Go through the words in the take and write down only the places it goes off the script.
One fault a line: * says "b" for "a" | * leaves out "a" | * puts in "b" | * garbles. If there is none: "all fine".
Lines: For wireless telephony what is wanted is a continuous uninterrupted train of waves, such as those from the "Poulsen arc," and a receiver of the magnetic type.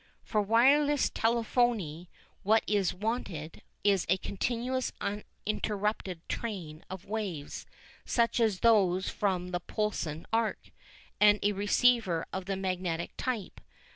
all fine